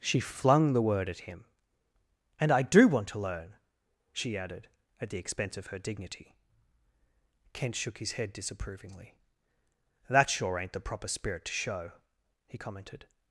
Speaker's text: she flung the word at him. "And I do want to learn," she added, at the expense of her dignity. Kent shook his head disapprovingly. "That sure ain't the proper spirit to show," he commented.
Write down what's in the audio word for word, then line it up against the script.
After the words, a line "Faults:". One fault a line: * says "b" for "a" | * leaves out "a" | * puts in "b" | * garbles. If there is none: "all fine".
she flung the word at him. "And I do want to learn," she added, at the expense of her dignity. Kent shook his head disapprovingly. "That sure ain't the proper spirit to show," he commented.
Faults:
all fine